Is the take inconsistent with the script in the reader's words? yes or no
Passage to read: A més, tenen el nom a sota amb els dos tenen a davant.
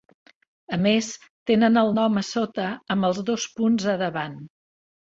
yes